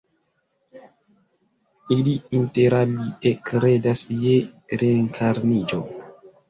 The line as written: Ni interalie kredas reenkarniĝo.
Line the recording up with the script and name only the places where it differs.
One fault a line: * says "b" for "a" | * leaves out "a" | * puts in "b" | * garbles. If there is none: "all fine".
* says "Ili" for "Ni"
* puts in "je"